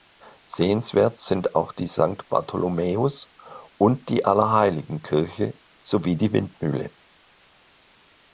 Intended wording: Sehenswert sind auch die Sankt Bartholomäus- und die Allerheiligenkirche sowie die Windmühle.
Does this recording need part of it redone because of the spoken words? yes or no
no